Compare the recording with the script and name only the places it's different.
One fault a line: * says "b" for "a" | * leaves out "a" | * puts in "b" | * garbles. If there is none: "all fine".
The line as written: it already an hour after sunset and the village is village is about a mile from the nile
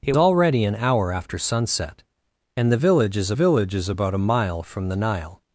all fine